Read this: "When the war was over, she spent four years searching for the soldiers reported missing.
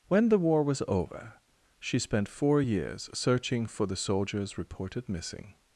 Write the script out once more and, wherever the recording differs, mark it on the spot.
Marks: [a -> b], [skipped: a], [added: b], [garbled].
"When the war was over, she spent four years searching for the soldiers reported missing.